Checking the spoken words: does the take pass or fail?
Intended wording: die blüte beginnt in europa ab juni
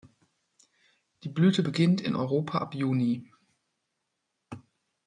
pass